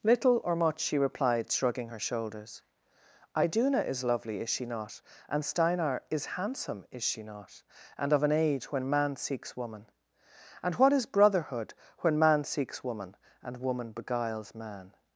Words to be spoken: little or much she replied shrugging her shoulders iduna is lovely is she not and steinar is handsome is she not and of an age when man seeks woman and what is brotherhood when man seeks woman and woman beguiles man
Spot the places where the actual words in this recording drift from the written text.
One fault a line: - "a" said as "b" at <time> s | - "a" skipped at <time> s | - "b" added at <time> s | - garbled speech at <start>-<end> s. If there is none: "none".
none